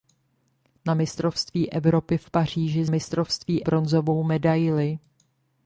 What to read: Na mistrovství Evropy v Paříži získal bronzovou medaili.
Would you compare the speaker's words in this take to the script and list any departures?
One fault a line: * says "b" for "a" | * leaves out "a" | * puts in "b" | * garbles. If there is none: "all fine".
* says "mistrovství" for "získal"